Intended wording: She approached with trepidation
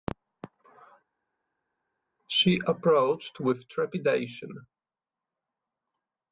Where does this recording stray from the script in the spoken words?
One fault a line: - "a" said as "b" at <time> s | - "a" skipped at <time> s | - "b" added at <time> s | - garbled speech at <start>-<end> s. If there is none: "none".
none